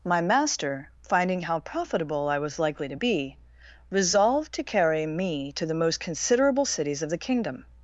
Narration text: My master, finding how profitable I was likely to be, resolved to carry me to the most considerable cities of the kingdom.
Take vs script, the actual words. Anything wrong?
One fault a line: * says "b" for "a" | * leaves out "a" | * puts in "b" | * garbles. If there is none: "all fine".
all fine